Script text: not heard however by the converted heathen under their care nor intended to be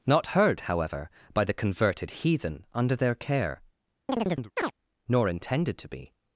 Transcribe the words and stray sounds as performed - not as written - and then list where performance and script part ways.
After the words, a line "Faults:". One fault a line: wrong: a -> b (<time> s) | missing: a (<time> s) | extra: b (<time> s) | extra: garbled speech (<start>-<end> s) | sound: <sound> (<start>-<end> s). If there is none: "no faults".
not heard however by the converted heathen under their care nor intended to be
Faults:
sound: chirp (4.1-4.7 s)